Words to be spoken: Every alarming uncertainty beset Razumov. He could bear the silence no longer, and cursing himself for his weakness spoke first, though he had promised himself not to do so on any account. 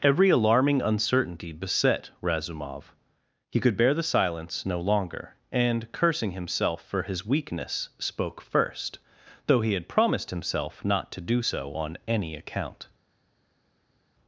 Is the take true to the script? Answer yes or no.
yes